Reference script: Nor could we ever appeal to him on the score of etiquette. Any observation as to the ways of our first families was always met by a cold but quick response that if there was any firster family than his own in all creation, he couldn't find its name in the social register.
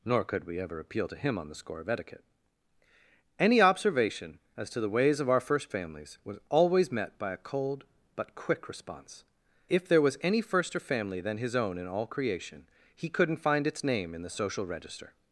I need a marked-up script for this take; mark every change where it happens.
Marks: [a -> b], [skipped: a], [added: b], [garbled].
Nor could we ever appeal to him on the score of etiquette. Any observation as to the ways of our first families was always met by a cold but quick response [skipped: that] if there was any firster family than his own in all creation, he couldn't find its name in the social register.